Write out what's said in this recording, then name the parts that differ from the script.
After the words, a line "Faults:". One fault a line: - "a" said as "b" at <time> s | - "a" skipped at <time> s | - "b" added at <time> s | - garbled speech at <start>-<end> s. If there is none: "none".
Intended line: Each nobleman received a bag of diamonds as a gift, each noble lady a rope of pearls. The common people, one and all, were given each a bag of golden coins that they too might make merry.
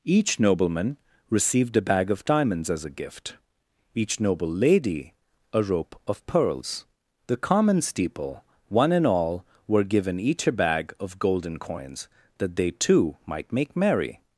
Each nobleman received a bag of diamonds as a gift, each noble lady a rope of pearls. The common steeple, one and all, were given each a bag of golden coins that they too might make merry.
Faults:
- "people" said as "steeple" at 7.8 s